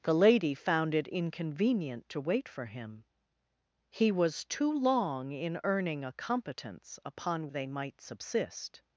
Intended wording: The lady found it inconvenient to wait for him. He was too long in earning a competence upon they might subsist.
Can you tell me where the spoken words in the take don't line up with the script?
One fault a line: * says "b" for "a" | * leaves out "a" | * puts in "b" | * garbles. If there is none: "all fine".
all fine